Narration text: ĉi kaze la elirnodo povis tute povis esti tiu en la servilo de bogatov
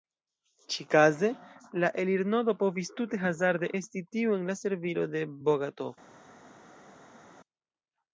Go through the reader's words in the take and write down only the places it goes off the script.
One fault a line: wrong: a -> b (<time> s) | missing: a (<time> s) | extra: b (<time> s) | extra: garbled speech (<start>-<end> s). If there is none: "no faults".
wrong: povis -> hazarde (3.2 s)